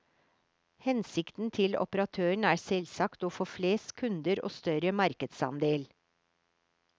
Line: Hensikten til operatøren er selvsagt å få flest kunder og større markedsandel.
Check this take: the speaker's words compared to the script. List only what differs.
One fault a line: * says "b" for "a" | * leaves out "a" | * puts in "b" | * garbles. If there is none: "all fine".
all fine